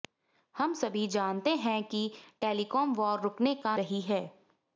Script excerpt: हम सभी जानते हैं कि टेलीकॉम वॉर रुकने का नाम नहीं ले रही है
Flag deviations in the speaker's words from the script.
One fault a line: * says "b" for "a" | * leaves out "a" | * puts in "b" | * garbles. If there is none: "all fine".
* leaves out "नाम नहीं ले"